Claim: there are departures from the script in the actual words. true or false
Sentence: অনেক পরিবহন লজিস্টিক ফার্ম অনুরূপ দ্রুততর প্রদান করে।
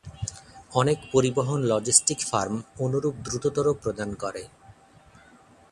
false